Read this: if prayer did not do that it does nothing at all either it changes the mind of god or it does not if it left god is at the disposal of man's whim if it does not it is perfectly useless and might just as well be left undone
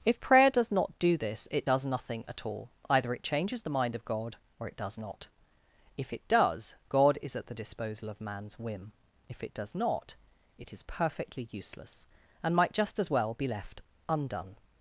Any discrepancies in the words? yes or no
yes